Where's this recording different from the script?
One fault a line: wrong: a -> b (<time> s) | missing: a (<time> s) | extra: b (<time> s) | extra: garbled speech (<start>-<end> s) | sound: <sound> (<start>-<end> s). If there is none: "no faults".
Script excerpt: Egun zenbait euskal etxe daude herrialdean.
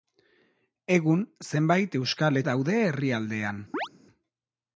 missing: etxe (2.4 s)
sound: chirp (3.7-3.9 s)